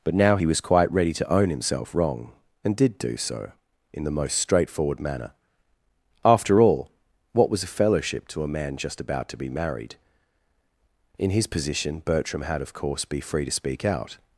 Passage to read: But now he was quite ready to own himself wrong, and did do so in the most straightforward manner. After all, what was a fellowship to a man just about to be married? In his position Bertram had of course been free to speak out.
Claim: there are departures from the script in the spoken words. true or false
true